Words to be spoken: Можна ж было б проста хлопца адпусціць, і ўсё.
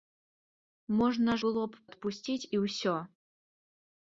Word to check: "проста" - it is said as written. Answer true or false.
false